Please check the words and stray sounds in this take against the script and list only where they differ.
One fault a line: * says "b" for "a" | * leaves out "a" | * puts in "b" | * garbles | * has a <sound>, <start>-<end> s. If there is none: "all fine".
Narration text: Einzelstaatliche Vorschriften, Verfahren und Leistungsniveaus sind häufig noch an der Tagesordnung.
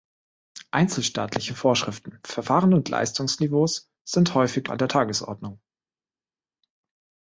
* leaves out "noch"